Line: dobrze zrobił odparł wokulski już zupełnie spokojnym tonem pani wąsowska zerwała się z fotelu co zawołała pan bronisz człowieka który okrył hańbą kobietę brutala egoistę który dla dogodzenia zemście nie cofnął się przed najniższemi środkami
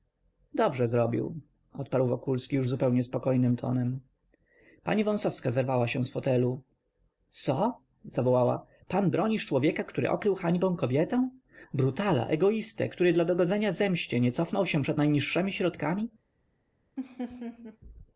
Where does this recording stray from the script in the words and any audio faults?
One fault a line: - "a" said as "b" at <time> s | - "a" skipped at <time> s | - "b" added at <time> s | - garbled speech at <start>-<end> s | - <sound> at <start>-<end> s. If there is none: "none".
- laugh at 17.0-17.8 s